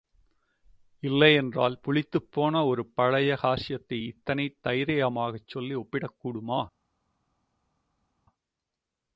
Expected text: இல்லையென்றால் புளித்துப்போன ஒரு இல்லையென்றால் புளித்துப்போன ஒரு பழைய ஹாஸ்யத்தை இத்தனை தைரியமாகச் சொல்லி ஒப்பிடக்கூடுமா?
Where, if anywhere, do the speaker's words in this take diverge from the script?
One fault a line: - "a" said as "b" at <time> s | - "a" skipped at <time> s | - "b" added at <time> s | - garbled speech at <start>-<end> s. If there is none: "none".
- "இல்லையென்றால் புளித்துப்போன ஒரு" skipped at 2.9 s